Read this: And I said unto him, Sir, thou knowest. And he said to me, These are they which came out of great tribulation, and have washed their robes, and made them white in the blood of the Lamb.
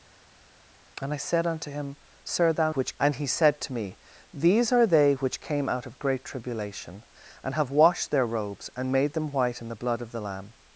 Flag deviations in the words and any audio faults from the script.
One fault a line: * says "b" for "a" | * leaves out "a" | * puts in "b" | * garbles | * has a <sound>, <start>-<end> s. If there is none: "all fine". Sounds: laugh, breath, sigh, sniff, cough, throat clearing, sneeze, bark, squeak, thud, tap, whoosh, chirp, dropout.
* says "which" for "knowest"